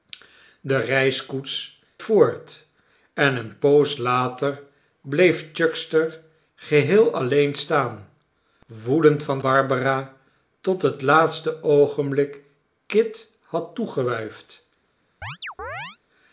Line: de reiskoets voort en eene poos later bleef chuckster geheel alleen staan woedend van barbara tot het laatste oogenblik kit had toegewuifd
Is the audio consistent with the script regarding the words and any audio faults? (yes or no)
no